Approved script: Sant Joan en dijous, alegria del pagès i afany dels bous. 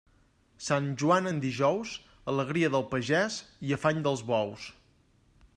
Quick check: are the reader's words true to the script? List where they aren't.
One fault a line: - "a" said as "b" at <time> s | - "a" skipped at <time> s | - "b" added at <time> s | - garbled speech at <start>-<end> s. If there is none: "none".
none